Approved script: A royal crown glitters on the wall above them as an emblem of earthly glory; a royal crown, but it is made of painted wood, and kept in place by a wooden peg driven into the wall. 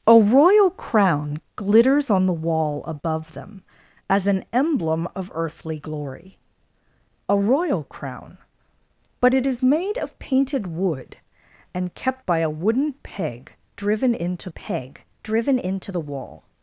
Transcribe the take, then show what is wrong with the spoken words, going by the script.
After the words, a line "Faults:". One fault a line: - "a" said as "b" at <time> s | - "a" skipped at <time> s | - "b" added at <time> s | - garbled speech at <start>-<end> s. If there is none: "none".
A royal crown glitters on the wall above them as an emblem of earthly glory; a royal crown, but it is made of painted wood, and kept by a wooden peg driven into peg driven into the wall.
Faults:
- "in place" skipped at 12.2 s
- "peg driven into" added at 14.5 s